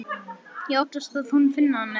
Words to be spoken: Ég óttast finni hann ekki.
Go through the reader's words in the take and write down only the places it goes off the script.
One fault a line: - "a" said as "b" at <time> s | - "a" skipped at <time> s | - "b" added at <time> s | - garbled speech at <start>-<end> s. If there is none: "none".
- "að hún" added at 1.2 s